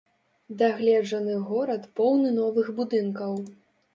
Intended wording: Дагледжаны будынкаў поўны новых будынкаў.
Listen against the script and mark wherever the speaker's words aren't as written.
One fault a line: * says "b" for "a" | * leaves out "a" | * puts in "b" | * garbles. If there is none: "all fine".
* says "горад" for "будынкаў"